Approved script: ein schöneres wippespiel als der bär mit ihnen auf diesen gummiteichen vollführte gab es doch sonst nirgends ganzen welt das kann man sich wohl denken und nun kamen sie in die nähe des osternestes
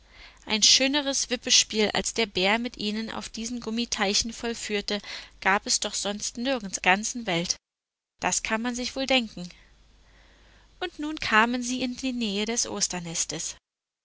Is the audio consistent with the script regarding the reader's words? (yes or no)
yes